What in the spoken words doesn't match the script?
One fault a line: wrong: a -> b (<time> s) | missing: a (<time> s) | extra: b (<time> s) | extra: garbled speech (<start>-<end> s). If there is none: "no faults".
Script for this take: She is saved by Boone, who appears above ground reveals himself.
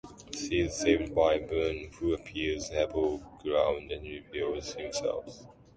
extra: and (3.9 s)